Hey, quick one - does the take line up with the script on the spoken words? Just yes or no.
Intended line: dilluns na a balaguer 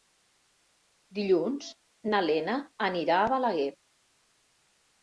no